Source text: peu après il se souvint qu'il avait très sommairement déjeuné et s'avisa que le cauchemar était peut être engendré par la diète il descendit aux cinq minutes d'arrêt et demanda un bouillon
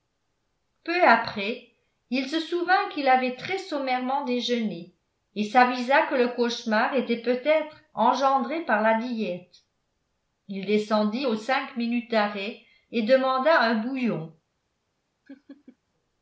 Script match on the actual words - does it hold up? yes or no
yes